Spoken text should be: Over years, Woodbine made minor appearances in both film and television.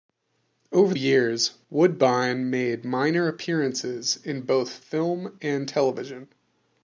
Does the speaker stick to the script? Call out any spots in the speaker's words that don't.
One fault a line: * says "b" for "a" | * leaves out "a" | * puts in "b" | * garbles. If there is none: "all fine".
all fine